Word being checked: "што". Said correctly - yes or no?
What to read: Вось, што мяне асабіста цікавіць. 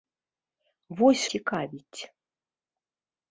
no